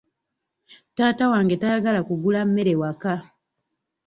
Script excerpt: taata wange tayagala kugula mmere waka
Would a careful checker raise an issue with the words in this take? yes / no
no